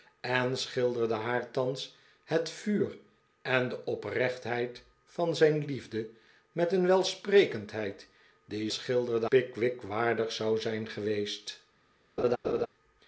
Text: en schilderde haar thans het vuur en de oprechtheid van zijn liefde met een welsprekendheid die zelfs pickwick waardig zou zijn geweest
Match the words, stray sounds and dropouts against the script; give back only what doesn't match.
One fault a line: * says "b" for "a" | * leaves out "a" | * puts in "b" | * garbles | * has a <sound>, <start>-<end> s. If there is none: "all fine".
* says "schilderde" for "zelfs"
* has a laugh, 12.2-12.7 s